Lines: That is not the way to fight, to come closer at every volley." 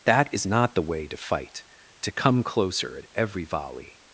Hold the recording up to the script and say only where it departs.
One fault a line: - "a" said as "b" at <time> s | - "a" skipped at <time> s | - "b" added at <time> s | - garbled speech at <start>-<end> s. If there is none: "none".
none